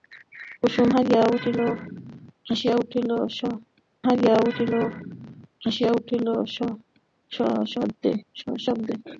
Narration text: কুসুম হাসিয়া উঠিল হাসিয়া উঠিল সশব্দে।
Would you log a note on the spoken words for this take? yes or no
no